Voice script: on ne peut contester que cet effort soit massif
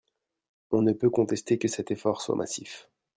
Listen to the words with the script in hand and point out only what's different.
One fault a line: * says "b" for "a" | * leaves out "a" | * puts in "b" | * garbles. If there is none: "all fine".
all fine